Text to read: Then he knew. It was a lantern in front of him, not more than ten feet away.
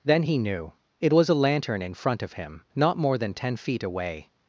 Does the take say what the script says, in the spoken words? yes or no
yes